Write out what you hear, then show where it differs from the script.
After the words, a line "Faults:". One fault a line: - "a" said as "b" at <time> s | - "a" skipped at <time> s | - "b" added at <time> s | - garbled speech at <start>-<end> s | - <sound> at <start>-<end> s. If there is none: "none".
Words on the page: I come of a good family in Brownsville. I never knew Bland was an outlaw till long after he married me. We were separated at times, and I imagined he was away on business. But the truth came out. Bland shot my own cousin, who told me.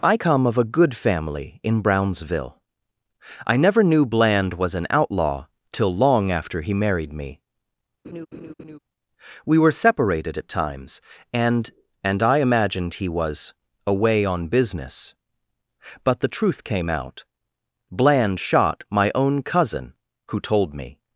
I come of a good family in Brownsville. I never knew Bland was an outlaw till long after he married me. We were separated at times, and and I imagined he was away on business. But the truth came out. Bland shot my own cousin, who told me.
Faults:
- laugh at 8.0-8.8 s
- "and" added at 12.0 s